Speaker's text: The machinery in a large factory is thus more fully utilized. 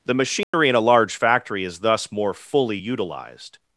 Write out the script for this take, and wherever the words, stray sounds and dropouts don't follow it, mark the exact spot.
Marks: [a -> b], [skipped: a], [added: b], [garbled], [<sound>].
The machinery [dropout] in a large factory is thus more fully utilized.